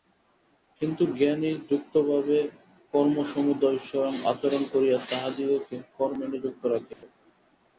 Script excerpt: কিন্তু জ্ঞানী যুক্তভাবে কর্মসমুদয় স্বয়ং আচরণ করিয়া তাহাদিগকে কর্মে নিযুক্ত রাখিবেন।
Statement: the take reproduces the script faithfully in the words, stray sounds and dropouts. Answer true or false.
false